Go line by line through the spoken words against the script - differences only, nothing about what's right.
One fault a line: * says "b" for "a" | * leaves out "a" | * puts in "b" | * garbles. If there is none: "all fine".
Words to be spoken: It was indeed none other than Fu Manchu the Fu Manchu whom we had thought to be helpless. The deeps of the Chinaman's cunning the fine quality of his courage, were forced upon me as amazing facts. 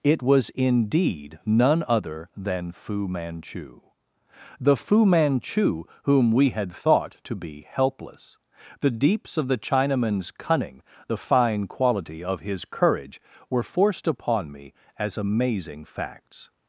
all fine